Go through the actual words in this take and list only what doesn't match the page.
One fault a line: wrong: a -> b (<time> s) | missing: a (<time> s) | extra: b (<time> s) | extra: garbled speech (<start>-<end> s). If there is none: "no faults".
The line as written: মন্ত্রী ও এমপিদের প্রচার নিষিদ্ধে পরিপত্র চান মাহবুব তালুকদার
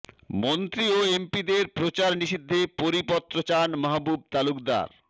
no faults